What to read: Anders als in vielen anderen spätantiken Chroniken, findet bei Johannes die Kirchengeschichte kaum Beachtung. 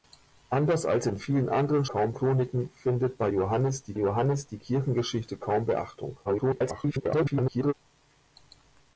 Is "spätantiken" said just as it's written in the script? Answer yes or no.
no